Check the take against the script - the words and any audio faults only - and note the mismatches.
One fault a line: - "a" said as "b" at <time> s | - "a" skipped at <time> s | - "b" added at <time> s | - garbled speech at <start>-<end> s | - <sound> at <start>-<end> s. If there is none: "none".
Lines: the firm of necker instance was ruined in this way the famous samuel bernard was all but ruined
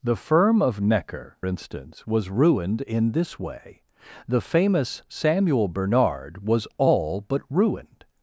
none